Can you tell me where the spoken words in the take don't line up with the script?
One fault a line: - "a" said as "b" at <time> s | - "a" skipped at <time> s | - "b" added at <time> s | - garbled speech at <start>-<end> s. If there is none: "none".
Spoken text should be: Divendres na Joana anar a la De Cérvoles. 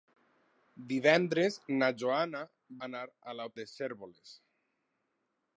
none